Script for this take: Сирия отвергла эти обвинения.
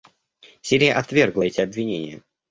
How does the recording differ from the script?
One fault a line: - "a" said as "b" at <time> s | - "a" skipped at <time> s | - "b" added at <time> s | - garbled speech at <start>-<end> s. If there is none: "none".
none